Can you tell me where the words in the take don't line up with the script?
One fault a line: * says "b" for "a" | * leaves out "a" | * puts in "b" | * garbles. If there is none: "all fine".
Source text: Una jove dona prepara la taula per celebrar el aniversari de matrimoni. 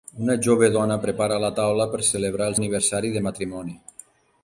all fine